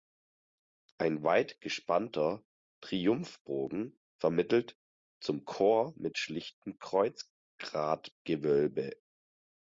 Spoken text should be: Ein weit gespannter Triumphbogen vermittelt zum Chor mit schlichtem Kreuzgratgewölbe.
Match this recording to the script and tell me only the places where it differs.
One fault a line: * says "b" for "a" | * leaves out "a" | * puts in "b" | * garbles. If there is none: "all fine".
all fine